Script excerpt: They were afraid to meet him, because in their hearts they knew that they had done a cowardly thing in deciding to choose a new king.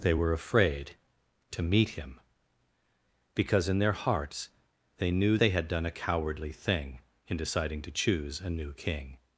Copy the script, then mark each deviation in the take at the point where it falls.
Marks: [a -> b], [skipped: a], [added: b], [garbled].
They were afraid to meet him, because in their hearts they knew [skipped: that] they had done a cowardly thing in deciding to choose a new king.